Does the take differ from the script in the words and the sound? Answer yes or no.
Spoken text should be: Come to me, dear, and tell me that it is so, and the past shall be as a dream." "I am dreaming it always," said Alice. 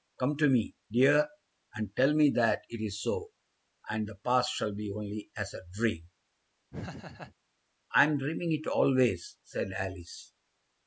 yes